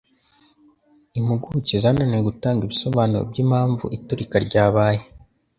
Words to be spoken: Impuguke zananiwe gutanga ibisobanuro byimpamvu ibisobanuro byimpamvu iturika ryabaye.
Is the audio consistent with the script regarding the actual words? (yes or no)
no